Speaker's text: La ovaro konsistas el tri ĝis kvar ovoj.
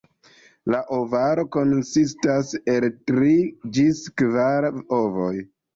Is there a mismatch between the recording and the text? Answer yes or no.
no